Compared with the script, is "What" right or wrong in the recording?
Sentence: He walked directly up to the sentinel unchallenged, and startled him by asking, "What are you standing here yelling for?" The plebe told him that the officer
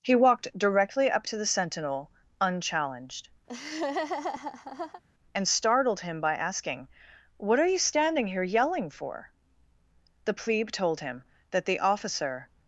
right